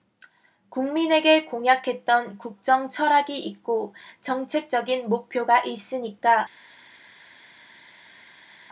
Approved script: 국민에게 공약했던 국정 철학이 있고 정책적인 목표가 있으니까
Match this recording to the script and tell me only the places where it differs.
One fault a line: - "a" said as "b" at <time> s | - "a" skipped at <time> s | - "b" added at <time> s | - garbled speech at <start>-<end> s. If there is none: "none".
none